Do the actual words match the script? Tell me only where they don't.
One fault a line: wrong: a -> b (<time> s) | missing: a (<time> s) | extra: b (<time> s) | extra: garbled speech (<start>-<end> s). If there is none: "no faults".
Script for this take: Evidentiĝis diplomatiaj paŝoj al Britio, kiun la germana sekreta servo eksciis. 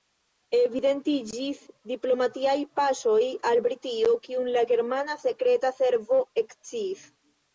no faults